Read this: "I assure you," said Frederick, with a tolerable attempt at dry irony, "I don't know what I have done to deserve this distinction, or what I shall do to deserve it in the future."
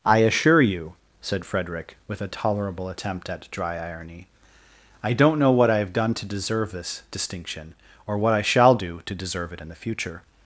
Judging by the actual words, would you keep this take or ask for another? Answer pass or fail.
pass